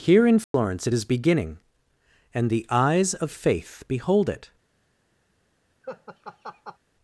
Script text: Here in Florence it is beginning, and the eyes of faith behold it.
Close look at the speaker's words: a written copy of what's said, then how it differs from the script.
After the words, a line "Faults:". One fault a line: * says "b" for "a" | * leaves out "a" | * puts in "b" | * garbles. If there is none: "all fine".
Here in Florence it is beginning, and the eyes of faith behold it.
Faults:
all fine